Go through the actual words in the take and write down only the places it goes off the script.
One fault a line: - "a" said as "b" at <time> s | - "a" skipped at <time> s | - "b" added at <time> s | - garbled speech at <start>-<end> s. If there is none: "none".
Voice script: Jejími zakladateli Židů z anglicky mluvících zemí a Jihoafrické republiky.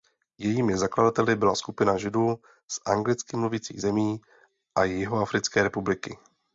- "byla skupina" added at 1.4 s